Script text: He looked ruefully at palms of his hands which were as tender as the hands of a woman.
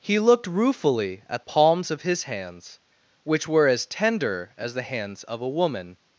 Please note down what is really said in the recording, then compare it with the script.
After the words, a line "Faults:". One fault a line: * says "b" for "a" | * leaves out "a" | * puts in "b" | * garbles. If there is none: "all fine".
He looked ruefully at palms of his hands which were as tender as the hands of a woman.
Faults:
all fine